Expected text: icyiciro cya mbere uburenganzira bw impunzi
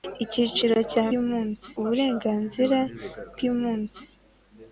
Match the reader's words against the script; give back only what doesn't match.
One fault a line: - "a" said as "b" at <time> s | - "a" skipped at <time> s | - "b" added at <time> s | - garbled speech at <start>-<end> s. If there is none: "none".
- "mbere" said as "impunzi" at 1.2 s